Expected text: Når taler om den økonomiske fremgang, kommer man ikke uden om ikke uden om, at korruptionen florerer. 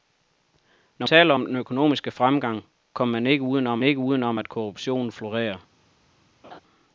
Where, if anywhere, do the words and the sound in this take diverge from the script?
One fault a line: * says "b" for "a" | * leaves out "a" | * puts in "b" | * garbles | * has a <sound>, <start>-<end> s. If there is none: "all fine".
* has a laugh, 6.4-6.6 s